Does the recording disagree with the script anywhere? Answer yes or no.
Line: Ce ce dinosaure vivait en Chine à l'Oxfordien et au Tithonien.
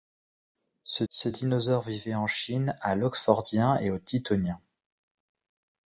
no